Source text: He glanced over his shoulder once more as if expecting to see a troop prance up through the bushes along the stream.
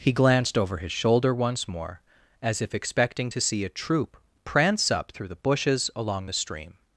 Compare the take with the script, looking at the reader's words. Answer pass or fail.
pass